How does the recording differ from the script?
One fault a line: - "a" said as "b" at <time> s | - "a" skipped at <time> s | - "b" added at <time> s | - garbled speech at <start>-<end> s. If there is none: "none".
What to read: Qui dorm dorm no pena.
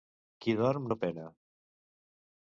- "dorm" skipped at 0.9 s